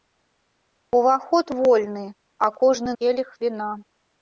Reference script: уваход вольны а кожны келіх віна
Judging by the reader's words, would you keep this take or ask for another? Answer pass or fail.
pass